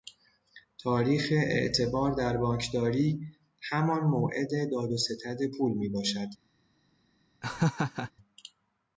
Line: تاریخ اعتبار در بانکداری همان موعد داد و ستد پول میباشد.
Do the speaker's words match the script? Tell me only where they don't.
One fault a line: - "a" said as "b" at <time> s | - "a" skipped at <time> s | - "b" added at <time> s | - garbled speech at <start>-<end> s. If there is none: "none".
none